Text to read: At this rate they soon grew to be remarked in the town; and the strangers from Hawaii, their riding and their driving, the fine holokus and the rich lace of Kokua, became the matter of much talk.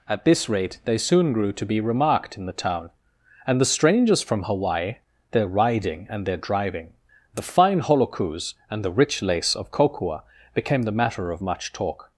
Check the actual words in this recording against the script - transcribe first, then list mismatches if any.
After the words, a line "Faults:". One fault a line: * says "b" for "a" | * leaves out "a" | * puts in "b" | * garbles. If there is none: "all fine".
At this rate they soon grew to be remarked in the town; and the strangers from Hawaii, their riding and their driving, the fine holokus and the rich lace of Kokua, became the matter of much talk.
Faults:
all fine